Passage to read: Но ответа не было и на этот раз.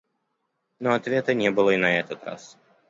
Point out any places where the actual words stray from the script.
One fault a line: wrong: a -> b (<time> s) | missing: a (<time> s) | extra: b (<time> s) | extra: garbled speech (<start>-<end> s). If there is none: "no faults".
no faults